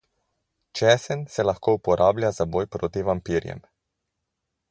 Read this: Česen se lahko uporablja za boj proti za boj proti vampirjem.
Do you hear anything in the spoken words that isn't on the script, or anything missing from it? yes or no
yes